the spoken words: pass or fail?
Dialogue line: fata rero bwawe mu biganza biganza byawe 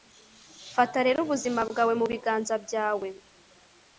fail